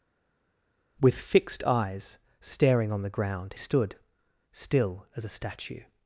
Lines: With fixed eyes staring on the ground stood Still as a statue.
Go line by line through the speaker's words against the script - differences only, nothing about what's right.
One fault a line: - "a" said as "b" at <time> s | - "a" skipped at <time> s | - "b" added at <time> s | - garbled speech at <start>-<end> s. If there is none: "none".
none